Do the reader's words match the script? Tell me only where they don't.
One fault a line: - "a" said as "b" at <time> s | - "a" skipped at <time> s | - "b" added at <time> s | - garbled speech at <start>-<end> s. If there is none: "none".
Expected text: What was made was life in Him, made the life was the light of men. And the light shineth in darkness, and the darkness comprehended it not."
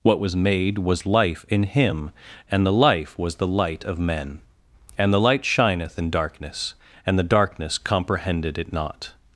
- "made" said as "and" at 2.5 s